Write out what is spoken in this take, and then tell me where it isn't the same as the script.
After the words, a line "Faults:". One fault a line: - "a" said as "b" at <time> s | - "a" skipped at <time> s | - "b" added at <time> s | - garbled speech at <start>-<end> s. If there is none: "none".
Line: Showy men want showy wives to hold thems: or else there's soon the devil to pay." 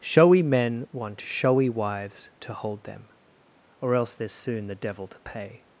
Showy men want showy wives to hold them: or else there's soon the devil to pay."
Faults:
- "thems" said as "them" at 2.9 s